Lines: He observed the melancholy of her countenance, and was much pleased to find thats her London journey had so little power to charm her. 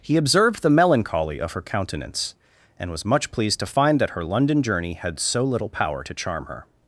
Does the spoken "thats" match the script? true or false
false